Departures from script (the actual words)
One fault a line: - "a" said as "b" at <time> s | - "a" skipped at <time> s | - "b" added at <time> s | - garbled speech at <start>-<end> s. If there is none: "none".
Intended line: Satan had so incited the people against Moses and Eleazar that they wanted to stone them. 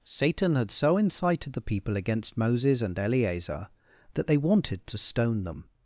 none